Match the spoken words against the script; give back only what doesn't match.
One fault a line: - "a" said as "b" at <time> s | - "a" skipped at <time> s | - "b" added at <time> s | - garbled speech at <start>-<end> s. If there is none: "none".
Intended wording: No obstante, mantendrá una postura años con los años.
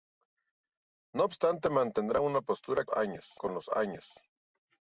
none